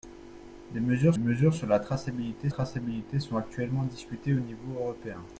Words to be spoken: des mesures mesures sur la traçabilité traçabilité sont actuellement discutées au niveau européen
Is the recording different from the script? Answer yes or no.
no